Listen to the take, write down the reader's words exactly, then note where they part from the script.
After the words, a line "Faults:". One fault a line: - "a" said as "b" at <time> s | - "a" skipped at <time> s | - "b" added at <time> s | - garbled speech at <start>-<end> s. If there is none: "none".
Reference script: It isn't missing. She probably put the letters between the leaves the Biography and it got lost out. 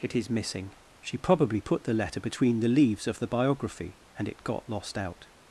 It is missing. She probably put the letter between the leaves of the Biography and it got lost out.
Faults:
- "isn't" said as "is" at 0.1 s
- "letters" said as "letter" at 1.9 s
- "of" added at 3.0 s